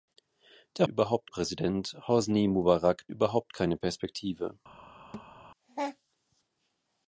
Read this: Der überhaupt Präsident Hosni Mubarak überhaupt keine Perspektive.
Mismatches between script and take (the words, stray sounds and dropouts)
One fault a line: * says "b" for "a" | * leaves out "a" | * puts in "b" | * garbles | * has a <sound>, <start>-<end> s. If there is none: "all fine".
* has a thud, 5.1-5.3 s